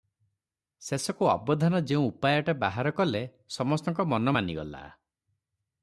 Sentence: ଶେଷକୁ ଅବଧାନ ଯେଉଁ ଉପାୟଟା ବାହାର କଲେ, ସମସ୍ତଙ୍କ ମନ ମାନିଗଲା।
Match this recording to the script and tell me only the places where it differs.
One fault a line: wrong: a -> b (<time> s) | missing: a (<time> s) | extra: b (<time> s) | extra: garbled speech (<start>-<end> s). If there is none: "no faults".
no faults